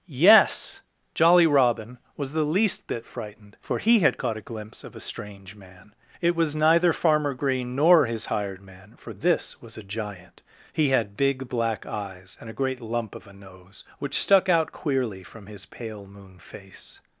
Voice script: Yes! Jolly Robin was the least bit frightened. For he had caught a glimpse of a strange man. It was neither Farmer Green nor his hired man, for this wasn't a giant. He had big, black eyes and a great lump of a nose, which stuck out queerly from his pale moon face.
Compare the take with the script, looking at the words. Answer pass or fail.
fail